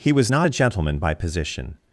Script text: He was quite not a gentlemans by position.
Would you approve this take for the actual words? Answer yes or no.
no